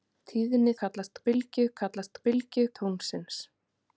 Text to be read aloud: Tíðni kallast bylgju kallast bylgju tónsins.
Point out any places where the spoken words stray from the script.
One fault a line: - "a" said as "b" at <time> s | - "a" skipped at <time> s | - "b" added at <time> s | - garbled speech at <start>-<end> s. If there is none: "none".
none